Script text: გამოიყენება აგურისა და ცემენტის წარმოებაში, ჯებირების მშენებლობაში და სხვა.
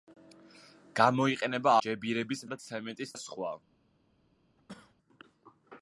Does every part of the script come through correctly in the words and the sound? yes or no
no